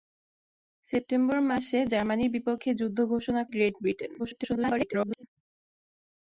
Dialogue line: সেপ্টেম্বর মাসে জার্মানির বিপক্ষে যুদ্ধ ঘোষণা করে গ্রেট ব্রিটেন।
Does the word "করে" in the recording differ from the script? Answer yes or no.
yes